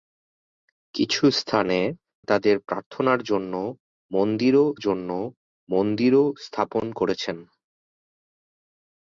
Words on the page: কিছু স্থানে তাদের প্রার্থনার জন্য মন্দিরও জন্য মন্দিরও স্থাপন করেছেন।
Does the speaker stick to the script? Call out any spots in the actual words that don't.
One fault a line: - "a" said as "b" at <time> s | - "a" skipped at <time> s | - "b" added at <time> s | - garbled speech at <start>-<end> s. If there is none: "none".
none